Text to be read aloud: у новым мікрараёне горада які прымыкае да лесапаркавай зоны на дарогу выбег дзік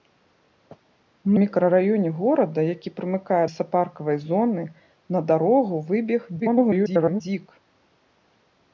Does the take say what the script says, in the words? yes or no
no